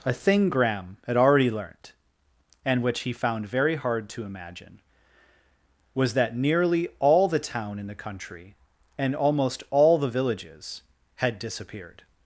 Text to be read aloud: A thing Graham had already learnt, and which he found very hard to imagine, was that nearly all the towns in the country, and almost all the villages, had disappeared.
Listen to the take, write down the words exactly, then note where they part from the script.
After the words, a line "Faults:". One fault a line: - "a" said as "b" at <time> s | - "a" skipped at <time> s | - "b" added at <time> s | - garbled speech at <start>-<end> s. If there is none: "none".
A thing Graham had already learnt, and which he found very hard to imagine, was that nearly all the town in the country, and almost all the villages, had disappeared.
Faults:
- "towns" said as "town" at 7.4 s